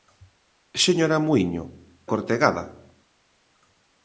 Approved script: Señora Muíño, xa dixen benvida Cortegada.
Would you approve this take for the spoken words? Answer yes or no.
no